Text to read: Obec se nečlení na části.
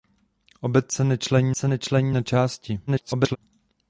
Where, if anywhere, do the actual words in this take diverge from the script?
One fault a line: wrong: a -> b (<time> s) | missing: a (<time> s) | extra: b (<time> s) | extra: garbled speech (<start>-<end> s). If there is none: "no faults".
extra: se nečlení (1.6 s)
extra: garbled speech (2.9-3.4 s)